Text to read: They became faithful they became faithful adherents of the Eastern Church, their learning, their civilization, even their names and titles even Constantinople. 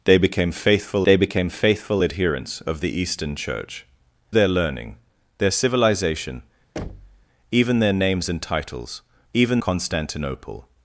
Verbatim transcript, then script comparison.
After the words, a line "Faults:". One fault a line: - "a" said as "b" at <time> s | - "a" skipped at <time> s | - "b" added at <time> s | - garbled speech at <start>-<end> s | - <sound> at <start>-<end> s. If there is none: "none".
They became faithful they became faithful adherents of the Eastern Church, their learning, their civilization, even their names and titles even Constantinople.
Faults:
- thud at 6.8-7.3 s